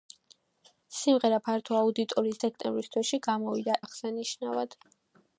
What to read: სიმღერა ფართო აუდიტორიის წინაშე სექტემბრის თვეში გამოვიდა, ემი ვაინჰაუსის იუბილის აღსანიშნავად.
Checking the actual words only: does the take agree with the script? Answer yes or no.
no